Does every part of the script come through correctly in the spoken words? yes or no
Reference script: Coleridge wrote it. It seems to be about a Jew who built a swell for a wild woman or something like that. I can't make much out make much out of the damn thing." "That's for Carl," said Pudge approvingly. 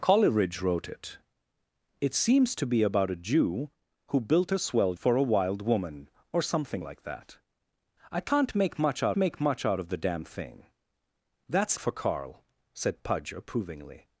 yes